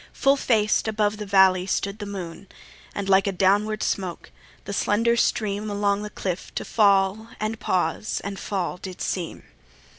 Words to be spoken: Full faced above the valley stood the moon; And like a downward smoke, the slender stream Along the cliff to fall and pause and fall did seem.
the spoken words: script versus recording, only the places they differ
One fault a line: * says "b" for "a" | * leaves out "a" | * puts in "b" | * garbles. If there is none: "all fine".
all fine